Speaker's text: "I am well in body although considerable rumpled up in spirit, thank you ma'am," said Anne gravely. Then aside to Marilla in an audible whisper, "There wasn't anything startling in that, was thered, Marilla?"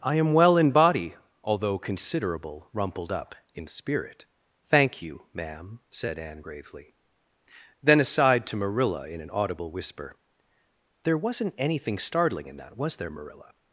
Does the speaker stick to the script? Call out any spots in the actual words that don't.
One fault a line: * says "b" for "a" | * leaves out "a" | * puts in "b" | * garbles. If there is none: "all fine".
* says "there" for "thered"